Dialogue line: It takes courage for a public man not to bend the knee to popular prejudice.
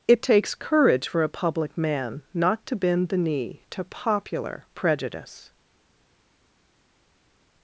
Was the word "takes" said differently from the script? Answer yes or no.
no